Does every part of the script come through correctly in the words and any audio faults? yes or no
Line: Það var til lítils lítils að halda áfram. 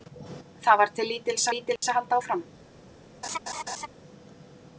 no